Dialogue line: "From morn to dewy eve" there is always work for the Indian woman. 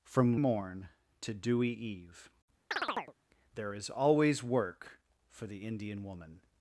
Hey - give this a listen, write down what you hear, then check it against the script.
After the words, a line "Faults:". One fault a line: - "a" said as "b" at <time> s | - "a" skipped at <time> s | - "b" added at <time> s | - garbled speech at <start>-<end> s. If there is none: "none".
"From morn to dewy eve" there is always work for the Indian woman.
Faults:
none